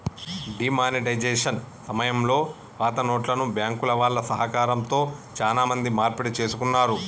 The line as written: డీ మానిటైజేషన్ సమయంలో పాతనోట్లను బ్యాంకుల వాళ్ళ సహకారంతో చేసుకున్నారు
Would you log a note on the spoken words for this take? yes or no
yes